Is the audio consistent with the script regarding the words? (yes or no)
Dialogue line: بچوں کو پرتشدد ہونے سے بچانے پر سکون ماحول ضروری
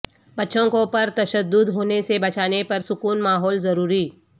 yes